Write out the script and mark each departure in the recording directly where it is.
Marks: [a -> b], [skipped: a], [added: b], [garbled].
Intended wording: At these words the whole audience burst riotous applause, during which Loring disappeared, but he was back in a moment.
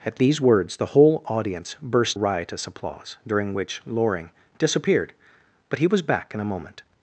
At these words the whole audience burst riotous applause, during which Loring disappeared, but he was back in a moment.